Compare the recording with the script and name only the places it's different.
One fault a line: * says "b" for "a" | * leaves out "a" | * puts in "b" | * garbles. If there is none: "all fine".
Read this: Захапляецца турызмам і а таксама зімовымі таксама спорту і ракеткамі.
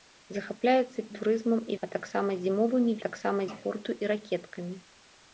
all fine